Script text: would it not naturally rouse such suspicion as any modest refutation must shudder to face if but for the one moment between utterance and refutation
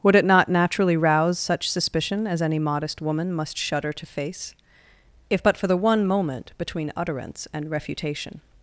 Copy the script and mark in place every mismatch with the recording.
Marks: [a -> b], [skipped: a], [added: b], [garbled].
would it not naturally rouse such suspicion as any modest [refutation -> woman] must shudder to face if but for the one moment between utterance and refutation